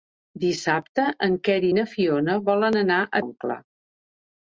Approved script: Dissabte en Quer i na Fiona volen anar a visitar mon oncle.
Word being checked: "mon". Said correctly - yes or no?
no